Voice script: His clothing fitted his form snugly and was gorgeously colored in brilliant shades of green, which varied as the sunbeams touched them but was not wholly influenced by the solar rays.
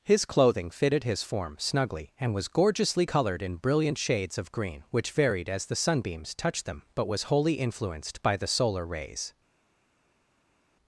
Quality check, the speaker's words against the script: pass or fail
fail